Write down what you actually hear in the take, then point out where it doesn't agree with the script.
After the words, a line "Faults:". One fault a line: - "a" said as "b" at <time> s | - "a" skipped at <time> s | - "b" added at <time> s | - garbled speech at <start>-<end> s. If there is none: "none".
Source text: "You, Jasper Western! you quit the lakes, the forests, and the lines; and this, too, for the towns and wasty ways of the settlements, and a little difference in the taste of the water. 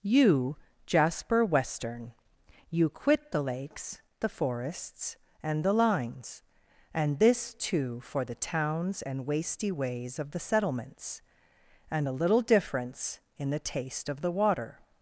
"You, Jasper Western! you quit the lakes, the forests, and the lines; and this, too, for the towns and wasty ways of the settlements, and a little difference in the taste of the water.
Faults:
none